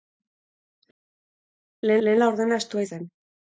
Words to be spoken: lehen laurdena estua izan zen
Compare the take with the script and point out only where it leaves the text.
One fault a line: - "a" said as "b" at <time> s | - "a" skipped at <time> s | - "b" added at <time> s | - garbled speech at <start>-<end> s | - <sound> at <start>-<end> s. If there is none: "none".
- "lehen" added at 2.1 s
- "izan" skipped at 2.9 s